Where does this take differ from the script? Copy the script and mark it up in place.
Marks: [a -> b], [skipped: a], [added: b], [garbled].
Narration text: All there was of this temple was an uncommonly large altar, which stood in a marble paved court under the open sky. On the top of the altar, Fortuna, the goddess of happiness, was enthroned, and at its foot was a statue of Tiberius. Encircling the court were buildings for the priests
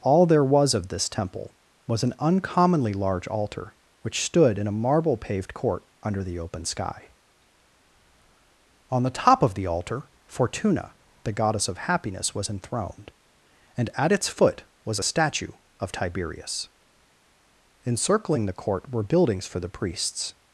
All there was of this temple was an uncommonly large altar, which stood in a marble paved court under the open sky. On the top of the altar, Fortuna, the goddess of happiness, was enthroned, and at its foot was a statue of Tiberius. Encircling the court were buildings for the priests